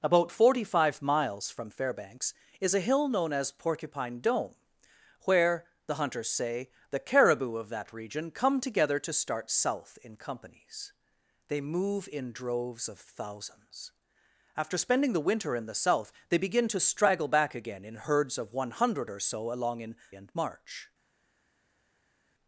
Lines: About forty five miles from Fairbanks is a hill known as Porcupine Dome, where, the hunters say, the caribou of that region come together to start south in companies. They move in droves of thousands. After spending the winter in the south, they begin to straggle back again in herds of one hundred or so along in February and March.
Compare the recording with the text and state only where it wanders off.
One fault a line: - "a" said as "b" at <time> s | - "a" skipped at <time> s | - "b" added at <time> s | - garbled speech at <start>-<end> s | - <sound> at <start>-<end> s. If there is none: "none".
- "February" skipped at 20.0 s